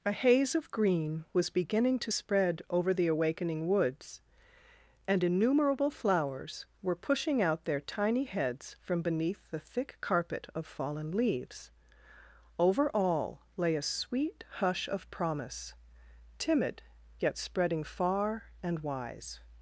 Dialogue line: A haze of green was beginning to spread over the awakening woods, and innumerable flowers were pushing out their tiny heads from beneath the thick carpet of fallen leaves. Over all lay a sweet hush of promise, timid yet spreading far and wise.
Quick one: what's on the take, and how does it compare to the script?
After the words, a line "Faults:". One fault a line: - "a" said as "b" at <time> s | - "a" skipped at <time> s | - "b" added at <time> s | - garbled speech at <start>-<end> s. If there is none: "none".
A haze of green was beginning to spread over the awakening woods, and innumerable flowers were pushing out their tiny heads from beneath the thick carpet of fallen leaves. Over all lay a sweet hush of promise, timid yet spreading far and wise.
Faults:
none